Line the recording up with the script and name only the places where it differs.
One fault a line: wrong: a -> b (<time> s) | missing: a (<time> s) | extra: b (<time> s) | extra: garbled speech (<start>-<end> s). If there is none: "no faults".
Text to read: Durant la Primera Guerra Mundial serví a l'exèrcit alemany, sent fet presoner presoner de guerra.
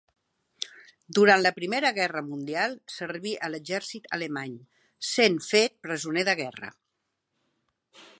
missing: presoner (6.3 s)